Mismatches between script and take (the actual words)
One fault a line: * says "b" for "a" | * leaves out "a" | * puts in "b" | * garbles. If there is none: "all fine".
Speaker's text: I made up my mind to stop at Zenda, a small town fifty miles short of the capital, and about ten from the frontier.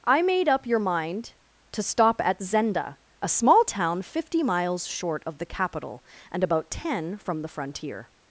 * says "your" for "my"